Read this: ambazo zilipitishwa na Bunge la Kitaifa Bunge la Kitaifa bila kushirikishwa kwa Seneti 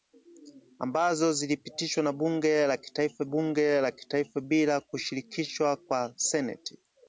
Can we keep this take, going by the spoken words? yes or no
yes